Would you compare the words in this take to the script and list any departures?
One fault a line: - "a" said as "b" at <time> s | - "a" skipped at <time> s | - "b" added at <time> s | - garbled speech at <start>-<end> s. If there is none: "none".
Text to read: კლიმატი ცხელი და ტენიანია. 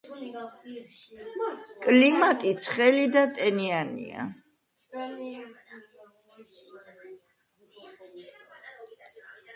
none